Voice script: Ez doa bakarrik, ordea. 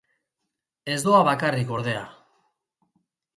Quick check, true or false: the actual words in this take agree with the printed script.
true